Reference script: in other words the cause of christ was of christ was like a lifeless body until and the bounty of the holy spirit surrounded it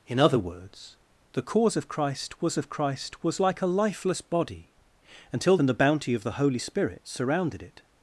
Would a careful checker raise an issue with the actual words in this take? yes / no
no